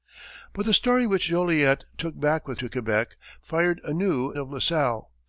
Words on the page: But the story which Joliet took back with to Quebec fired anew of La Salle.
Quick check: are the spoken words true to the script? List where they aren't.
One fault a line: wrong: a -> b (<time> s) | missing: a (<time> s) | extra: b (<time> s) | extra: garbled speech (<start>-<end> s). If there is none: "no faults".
no faults